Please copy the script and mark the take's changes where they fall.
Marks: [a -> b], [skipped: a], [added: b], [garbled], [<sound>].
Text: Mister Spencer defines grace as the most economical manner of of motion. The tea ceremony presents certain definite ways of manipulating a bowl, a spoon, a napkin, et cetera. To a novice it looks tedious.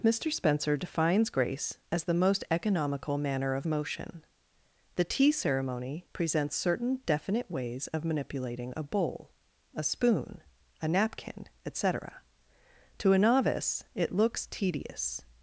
Mister Spencer defines grace as the most economical manner of [skipped: of] motion. The tea ceremony presents certain definite ways of manipulating a bowl, a spoon, a napkin, et cetera. To a novice it looks tedious.